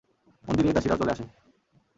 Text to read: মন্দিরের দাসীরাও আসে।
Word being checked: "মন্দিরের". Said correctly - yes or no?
yes